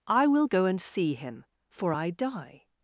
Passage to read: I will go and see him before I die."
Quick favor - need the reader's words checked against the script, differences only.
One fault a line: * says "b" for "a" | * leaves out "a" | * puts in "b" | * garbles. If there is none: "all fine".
* says "for" for "before"